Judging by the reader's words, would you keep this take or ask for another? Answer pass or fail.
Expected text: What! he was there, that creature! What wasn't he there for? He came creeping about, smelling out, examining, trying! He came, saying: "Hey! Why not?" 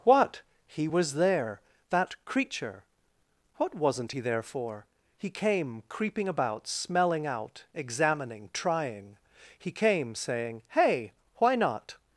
pass